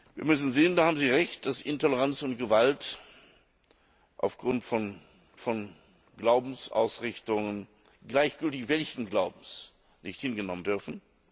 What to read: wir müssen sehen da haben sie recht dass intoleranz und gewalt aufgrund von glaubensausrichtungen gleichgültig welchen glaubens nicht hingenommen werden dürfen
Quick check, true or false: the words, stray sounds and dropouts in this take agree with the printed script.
false